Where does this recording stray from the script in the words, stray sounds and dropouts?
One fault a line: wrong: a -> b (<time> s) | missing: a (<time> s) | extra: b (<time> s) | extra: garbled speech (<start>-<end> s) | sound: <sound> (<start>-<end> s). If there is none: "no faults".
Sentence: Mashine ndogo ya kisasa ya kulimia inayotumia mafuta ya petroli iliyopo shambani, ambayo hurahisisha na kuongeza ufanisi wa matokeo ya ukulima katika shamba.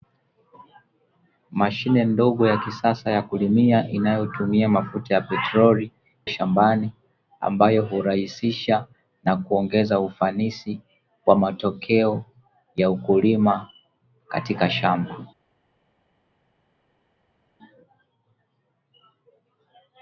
missing: iliyopo (5.9 s)